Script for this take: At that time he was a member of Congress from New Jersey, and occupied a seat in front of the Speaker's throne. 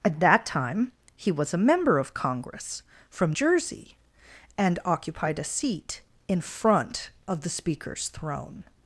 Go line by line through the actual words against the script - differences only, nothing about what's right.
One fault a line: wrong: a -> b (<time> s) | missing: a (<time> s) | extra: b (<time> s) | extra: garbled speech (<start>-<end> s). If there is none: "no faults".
missing: New (3.3 s)